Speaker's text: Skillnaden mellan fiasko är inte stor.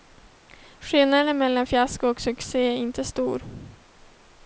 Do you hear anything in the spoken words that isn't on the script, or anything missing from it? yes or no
yes